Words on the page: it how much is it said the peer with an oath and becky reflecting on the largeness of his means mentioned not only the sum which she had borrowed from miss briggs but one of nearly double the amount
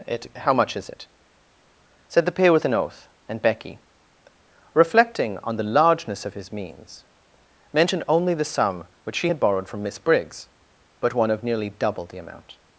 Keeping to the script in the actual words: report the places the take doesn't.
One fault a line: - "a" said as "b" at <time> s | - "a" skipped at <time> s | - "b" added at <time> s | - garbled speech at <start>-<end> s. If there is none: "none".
- "not" skipped at 8.0 s